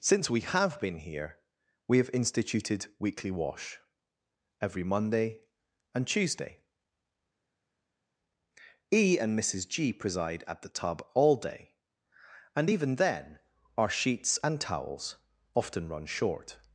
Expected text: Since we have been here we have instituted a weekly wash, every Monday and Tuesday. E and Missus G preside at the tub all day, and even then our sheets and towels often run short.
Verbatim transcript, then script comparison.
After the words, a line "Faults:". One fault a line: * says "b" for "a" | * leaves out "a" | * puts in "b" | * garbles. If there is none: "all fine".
Since we have been here we have instituted weekly wash, every Monday and Tuesday. E and Missus G preside at the tub all day, and even then our sheets and towels often run short.
Faults:
* leaves out "a"